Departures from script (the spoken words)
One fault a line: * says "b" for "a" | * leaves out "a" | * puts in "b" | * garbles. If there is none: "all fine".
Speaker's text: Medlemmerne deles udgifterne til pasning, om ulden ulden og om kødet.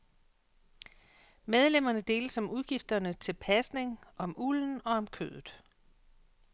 * puts in "om"
* leaves out "ulden"